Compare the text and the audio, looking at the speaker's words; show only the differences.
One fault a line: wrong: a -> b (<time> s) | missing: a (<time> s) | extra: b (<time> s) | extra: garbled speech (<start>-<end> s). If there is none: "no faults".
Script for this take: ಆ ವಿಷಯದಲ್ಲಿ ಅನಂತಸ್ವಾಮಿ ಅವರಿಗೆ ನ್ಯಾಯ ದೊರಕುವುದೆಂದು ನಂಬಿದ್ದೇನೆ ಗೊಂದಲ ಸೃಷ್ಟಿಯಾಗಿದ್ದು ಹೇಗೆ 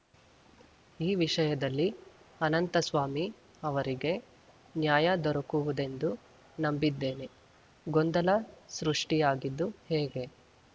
wrong: ಆ -> ಈ (1.0 s)